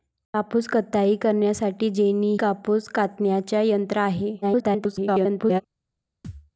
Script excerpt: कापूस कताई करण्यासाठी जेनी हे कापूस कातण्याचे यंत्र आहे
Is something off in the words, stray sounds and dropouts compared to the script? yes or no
yes